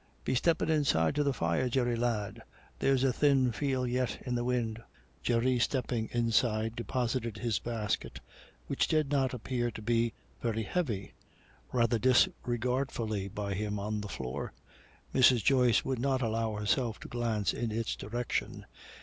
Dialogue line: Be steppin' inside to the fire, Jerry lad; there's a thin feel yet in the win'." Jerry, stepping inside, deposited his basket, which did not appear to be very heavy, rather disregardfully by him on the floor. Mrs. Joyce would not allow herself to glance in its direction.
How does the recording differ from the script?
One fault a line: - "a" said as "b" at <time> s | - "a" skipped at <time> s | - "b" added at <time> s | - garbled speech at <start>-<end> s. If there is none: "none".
none